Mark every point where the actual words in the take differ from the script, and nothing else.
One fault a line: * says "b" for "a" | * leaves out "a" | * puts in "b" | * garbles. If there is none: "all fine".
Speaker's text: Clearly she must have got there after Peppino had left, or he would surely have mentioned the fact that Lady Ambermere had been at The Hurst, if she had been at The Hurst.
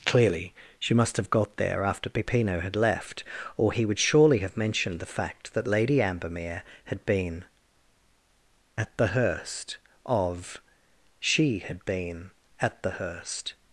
* says "of" for "if"